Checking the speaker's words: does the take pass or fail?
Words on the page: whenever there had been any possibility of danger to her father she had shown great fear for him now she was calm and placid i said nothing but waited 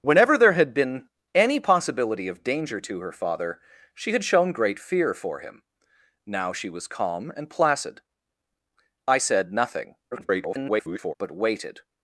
fail